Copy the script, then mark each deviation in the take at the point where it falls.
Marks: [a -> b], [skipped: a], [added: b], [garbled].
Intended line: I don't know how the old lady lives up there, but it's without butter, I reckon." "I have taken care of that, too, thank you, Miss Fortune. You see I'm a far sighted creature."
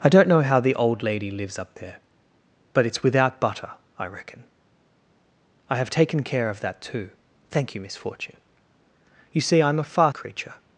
I don't know how the old lady lives up there, but it's without butter, I reckon." "I have taken care of that, too, thank you, Miss Fortune. You see I'm a far [skipped: sighted] creature."